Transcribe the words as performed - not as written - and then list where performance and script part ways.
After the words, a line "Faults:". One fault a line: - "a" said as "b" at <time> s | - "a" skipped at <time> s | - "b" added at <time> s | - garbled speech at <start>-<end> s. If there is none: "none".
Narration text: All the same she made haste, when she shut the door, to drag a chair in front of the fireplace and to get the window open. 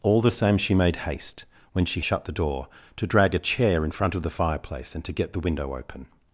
All the same she made haste, when she shut the door, to drag a chair in front of the fireplace and to get the window open.
Faults:
none